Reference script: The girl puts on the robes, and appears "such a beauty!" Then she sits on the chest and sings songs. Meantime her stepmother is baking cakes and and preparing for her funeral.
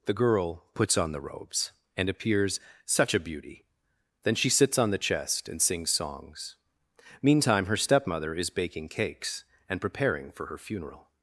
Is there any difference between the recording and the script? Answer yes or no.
yes